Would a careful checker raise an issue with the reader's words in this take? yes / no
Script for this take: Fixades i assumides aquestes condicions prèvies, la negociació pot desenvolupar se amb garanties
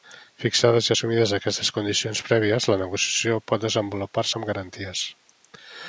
no